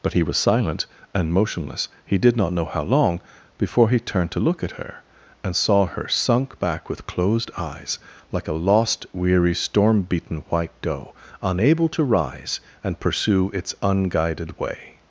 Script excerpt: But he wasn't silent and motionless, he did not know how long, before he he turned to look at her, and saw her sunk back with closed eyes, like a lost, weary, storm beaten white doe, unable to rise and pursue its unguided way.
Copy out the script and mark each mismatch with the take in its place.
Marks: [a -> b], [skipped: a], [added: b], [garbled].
But he [wasn't -> was] silent and motionless, he did not know how long, before he [skipped: he] turned to look at her, and saw her sunk back with closed eyes, like a lost, weary, storm beaten white doe, unable to rise and pursue its unguided way.